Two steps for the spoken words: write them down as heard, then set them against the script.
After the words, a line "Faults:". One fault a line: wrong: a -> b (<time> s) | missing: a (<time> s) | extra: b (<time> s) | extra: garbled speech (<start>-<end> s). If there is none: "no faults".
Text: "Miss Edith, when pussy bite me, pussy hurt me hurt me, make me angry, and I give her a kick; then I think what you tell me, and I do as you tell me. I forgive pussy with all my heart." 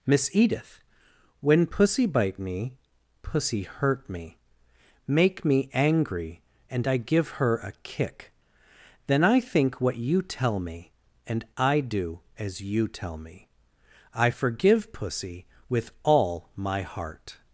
"Miss Edith, when pussy bite me, pussy hurt me, make me angry, and I give her a kick; then I think what you tell me, and I do as you tell me. I forgive pussy with all my heart."
Faults:
missing: hurt me (4.4 s)